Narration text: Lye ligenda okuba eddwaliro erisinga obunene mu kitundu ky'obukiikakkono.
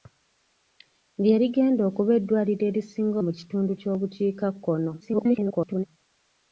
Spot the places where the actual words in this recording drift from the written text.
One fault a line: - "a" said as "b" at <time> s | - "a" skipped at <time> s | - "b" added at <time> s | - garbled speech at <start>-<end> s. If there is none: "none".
- "obunene" skipped at 3.2 s
- garbled speech at 5.0-5.8 s